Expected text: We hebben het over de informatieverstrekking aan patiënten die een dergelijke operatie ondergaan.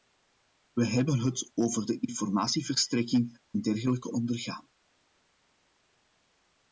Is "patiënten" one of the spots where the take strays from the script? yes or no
yes